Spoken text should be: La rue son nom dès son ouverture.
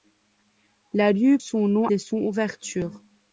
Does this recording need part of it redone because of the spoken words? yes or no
no